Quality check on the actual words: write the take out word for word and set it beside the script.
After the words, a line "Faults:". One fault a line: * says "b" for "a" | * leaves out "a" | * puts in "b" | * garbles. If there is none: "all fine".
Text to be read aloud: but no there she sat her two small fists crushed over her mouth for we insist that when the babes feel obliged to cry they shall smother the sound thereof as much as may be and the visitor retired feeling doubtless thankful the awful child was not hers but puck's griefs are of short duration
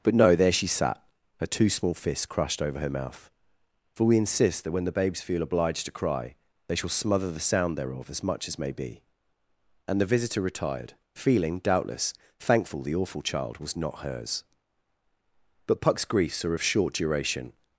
but no there she sat her two small fists crushed over her mouth for we insist that when the babes feel obliged to cry they shall smother the sound thereof as much as may be and the visitor retired feeling doubtless thankful the awful child was not hers but puck's griefs are of short duration
Faults:
all fine